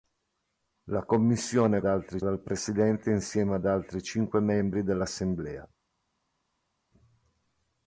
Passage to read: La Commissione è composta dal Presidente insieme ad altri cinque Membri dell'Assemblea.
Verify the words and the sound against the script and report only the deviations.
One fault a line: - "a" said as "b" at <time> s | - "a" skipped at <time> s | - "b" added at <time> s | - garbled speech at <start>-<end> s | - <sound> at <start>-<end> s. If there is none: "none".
- "composta" said as "altri" at 1.8 s